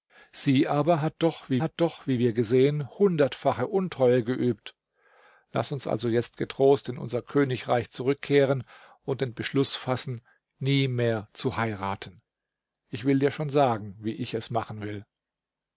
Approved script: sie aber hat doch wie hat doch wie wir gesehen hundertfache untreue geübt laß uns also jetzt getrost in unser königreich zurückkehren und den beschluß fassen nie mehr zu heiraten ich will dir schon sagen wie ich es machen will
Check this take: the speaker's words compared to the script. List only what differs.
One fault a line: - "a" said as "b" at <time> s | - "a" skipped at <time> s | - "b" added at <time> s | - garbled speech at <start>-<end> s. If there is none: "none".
none